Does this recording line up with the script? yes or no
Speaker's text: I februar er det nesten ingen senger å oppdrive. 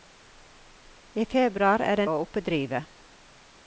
no